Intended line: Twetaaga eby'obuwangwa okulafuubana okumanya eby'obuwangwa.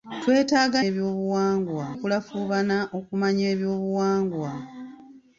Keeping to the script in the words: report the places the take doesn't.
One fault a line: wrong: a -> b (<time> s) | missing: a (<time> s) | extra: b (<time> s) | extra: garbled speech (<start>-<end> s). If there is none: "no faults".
no faults